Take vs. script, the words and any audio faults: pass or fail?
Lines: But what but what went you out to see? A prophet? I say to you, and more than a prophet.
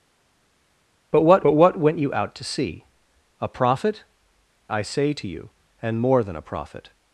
pass